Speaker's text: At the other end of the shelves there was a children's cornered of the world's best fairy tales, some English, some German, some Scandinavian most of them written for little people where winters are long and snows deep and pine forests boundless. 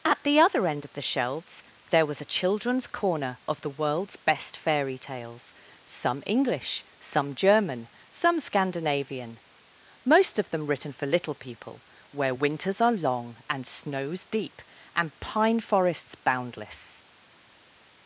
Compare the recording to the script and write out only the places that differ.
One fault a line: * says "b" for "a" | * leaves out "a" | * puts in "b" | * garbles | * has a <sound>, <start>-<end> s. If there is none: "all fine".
* says "corner" for "cornered"